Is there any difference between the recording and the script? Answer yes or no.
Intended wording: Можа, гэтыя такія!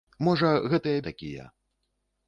no